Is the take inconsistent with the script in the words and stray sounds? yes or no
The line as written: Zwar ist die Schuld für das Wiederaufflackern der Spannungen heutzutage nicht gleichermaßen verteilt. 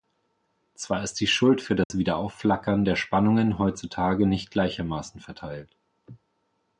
yes